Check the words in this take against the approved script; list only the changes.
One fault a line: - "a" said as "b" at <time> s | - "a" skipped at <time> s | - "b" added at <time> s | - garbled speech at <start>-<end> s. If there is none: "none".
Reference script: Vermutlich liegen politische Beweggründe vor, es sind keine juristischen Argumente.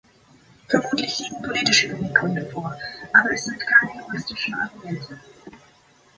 - "aber" added at 3.1 s